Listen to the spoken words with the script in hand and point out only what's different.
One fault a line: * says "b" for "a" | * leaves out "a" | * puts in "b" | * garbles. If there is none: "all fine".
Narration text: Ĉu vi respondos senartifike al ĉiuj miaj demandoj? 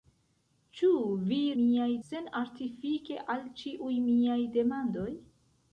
* says "miaj" for "respondos"